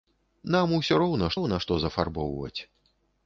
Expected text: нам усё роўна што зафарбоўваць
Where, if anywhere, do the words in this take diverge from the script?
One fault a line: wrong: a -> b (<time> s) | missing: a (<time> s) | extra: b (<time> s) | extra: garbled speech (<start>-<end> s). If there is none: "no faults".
extra: роўна (1.4 s)